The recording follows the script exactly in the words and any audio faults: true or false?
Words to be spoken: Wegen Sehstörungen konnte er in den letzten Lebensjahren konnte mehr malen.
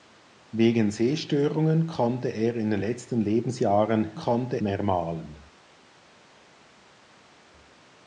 true